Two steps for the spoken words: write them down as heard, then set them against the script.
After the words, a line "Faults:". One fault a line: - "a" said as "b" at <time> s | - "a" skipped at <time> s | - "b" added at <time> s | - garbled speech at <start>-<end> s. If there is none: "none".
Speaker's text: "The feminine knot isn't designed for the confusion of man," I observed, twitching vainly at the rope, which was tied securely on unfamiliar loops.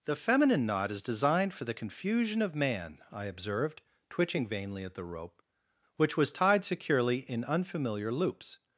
"The feminine knot is designed for the confusion of man," I observed, twitching vainly at the rope, which was tied securely in unfamiliar loops.
Faults:
- "isn't" said as "is" at 0.9 s
- "on" said as "in" at 7.3 s